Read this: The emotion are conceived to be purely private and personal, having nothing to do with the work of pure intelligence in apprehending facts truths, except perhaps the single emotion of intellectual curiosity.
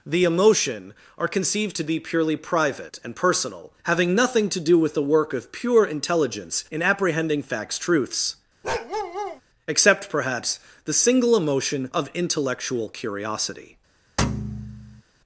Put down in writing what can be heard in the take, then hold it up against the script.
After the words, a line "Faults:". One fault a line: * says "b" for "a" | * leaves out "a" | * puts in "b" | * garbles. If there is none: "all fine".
The emotion are conceived to be purely private and personal, having nothing to do with the work of pure intelligence in apprehending facts truths, except perhaps the single emotion of intellectual curiosity.
Faults:
all fine